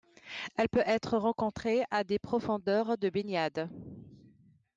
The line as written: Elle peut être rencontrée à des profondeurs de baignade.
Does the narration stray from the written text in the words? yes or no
no